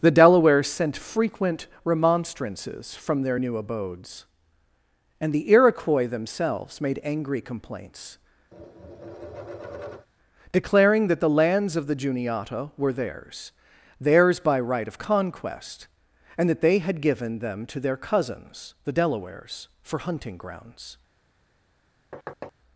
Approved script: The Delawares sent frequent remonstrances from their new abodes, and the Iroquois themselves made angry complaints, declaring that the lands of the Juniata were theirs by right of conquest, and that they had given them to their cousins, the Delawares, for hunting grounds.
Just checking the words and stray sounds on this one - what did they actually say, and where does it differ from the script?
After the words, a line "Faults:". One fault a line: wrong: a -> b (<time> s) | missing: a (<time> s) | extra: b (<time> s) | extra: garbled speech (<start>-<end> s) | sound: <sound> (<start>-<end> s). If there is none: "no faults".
The Delawares sent frequent remonstrances from their new abodes, and the Iroquois themselves made angry complaints, declaring that the lands of the Juniata were theirs theirs by right of conquest, and that they had given them to their cousins, the Delawares, for hunting grounds.
Faults:
sound: tap (8.5-10.1 s)
extra: theirs (14.0 s)
sound: thud (22.1-22.5 s)